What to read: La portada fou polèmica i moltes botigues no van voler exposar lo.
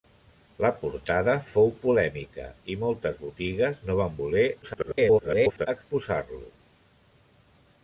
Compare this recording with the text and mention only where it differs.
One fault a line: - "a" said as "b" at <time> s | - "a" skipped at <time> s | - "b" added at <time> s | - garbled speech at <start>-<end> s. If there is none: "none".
- garbled speech at 4.6-5.7 s